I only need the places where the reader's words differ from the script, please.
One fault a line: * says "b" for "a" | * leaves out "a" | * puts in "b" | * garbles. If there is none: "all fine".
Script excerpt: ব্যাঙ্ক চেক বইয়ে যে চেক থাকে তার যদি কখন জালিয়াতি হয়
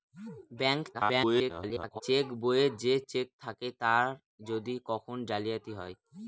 * garbles